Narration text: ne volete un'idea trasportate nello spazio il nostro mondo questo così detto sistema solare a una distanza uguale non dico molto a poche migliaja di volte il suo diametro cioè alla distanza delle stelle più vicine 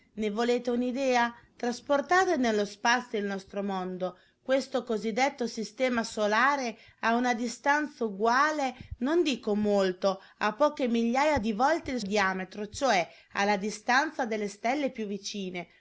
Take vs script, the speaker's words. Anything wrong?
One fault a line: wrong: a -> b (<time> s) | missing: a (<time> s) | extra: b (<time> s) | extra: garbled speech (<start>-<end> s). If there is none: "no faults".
missing: suo (12.0 s)